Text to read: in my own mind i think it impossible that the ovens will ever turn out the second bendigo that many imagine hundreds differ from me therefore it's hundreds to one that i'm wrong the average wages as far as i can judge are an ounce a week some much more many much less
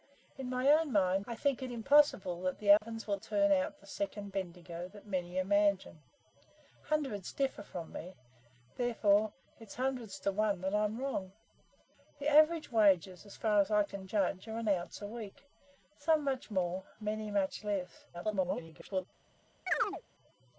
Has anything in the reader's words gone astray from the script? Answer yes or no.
yes